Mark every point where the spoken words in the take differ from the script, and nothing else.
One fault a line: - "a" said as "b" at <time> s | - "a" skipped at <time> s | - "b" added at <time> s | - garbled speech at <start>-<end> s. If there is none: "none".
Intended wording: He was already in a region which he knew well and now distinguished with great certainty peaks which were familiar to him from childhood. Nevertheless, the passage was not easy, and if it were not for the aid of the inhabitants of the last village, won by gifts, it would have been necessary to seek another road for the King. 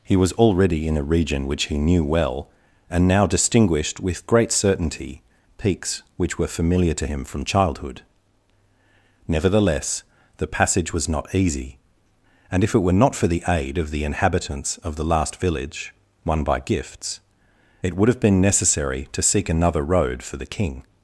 none